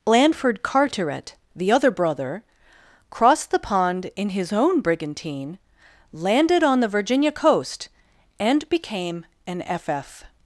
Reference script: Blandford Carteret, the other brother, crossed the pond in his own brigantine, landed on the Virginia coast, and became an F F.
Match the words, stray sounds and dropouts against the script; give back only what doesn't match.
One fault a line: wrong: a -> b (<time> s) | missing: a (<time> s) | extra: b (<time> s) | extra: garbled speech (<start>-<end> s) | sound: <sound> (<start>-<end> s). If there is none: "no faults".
no faults